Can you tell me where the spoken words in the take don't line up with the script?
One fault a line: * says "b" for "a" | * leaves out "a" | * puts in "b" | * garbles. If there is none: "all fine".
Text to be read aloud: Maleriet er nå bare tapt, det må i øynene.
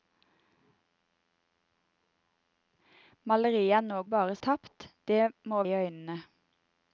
all fine